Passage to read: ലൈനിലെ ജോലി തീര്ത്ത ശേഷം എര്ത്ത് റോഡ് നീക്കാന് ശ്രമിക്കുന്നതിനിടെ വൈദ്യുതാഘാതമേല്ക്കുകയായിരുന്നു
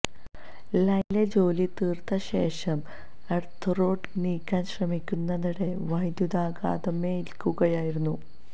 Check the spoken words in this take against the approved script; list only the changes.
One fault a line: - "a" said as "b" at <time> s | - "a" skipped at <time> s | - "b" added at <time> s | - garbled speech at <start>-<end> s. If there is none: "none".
none